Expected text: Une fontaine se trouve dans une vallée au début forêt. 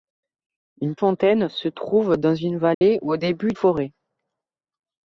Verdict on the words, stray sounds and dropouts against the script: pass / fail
fail